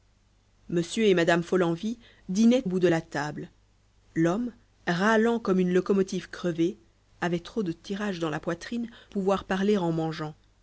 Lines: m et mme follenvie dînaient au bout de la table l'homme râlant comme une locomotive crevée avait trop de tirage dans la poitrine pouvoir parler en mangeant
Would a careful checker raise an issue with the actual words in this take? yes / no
no